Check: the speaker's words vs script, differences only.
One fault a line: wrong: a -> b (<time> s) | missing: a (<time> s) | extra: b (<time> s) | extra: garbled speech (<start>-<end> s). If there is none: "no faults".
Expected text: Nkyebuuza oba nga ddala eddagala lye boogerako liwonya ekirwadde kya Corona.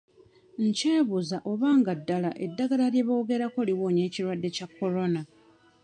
no faults